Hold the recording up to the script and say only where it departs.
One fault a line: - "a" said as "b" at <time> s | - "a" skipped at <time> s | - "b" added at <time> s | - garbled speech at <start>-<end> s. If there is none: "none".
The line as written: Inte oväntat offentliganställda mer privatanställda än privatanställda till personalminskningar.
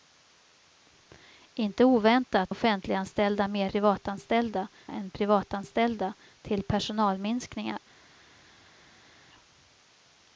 none